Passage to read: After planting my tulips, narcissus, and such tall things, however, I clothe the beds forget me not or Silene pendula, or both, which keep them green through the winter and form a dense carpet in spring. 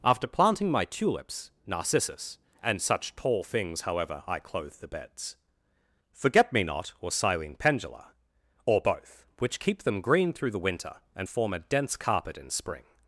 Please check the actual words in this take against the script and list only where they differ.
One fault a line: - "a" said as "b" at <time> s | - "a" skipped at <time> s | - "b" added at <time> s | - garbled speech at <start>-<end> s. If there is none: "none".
none